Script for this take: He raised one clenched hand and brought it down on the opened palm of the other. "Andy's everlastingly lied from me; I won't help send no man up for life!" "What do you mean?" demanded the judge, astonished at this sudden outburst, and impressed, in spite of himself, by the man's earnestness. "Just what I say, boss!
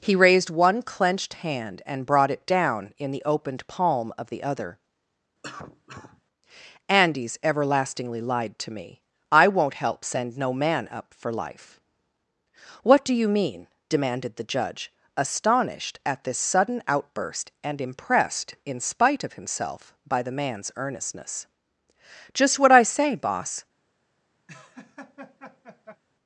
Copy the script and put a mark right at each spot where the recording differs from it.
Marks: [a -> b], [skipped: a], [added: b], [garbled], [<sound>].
He raised one clenched hand and brought it down [on -> in] the opened palm of the other. [cough] "Andy's everlastingly lied [from -> to] me; I won't help send no man up for life!" "What do you mean?" demanded the judge, astonished at this sudden outburst, and impressed, in spite of himself, by the man's earnestness. "Just what I say, boss! [laugh]